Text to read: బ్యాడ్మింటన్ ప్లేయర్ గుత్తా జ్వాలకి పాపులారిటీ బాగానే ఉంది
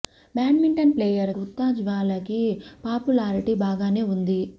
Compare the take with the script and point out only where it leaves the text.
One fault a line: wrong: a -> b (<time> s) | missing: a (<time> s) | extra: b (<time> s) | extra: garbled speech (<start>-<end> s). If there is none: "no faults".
no faults